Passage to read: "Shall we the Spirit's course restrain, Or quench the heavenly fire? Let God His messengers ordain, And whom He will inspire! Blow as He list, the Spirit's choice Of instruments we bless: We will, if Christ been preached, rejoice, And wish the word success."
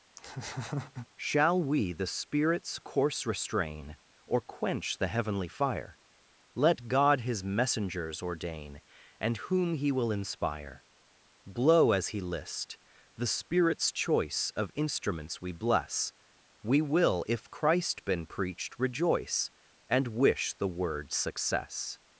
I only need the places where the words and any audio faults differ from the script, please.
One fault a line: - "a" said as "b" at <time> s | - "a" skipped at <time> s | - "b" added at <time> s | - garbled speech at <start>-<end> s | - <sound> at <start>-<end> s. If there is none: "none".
- laugh at 0.2-1.1 s